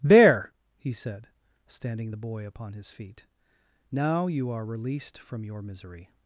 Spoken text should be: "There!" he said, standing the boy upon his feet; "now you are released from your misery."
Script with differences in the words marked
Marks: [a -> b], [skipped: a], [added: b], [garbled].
"There!" he said, standing the boy upon his feet; "now you are released from your misery."